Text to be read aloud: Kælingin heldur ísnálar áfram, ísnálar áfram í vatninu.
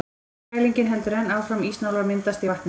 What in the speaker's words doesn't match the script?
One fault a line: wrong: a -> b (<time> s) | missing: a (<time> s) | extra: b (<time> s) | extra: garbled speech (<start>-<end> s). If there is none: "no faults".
wrong: ísnálar -> enn (1.2 s)
wrong: áfram -> myndast (2.1 s)